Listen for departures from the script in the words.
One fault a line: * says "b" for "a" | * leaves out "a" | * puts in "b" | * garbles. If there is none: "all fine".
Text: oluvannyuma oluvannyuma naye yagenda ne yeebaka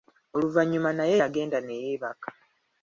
* leaves out "oluvannyuma"